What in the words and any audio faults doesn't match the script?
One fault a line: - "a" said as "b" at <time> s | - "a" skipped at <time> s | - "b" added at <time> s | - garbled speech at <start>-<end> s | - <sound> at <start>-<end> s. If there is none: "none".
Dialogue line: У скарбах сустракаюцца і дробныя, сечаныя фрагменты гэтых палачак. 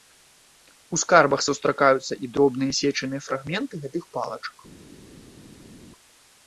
none